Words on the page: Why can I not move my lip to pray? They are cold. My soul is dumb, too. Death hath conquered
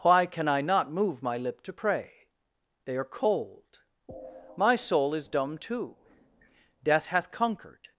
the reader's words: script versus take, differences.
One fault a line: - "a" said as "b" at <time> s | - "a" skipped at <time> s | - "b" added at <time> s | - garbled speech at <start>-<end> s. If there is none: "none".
none